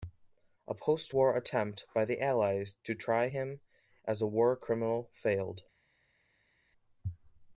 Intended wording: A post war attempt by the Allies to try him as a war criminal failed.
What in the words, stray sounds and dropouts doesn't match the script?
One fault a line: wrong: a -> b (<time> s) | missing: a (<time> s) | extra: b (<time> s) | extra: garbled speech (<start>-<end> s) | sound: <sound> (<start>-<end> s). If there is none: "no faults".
no faults